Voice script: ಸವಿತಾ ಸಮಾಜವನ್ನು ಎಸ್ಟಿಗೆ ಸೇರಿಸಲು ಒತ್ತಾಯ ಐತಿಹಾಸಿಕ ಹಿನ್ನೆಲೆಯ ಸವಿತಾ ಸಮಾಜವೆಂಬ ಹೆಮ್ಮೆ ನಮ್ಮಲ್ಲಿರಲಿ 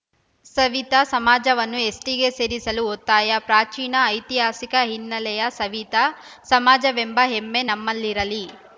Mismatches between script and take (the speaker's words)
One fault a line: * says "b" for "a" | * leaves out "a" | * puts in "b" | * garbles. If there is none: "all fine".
* puts in "ಪ್ರಾಚೀನ"